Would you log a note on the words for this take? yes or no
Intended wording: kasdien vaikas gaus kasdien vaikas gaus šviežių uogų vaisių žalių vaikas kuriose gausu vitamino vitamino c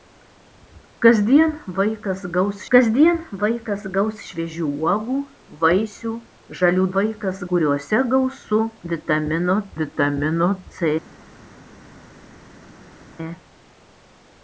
no